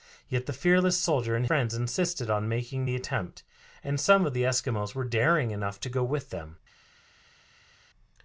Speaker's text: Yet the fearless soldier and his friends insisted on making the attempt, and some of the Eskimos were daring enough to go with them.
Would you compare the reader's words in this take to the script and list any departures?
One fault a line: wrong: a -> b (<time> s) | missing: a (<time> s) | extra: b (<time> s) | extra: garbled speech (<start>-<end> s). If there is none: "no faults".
missing: his (1.4 s)